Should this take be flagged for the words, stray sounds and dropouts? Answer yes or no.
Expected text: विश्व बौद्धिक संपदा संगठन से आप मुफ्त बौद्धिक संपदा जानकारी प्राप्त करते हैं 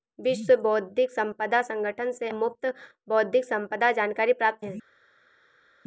yes